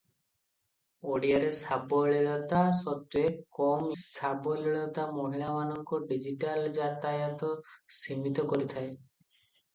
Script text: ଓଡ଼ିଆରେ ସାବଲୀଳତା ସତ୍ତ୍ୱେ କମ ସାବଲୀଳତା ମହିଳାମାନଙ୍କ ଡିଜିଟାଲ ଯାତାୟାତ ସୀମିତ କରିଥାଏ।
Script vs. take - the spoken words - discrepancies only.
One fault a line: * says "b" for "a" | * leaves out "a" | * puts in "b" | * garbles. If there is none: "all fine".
all fine